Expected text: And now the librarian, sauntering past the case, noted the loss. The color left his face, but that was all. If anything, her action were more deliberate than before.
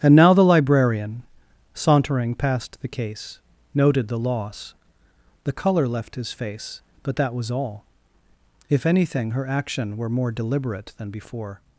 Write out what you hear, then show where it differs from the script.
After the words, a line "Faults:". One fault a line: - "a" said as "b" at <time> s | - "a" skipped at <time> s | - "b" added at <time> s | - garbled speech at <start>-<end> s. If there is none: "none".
And now the librarian, sauntering past the case, noted the loss. The color left his face, but that was all. If anything, her action were more deliberate than before.
Faults:
none